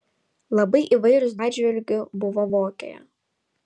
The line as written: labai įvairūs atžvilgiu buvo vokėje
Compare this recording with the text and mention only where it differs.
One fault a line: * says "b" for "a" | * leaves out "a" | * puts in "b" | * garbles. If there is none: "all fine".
all fine